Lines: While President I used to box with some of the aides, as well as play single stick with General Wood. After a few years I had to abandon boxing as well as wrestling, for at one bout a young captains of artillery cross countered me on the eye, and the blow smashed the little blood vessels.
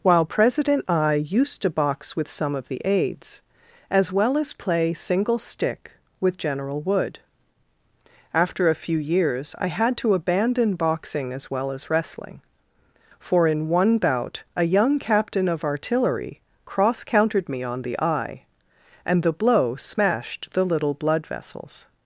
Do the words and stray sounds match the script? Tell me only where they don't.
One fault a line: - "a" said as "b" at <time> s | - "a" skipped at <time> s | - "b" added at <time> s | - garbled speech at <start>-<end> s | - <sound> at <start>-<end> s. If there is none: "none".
- "at" said as "in" at 13.5 s
- "captains" said as "captain" at 15.0 s